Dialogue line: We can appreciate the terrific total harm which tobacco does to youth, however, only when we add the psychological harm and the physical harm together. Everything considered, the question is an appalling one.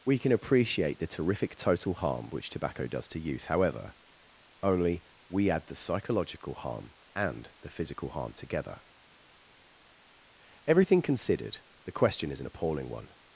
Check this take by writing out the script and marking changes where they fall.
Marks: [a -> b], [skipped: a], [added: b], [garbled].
We can appreciate the terrific total harm which tobacco does to youth, however, only [skipped: when] we add the psychological harm and the physical harm together. Everything considered, the question is an appalling one.